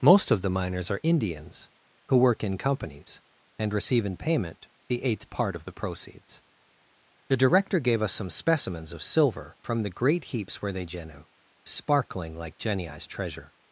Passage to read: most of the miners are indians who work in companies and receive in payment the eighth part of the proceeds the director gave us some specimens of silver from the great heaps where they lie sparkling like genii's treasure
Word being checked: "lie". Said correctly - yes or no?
no